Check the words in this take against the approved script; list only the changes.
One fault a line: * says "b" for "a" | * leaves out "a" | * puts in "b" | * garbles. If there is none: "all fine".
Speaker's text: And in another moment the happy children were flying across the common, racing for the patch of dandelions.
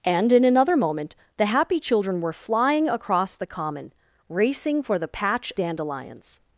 * leaves out "of"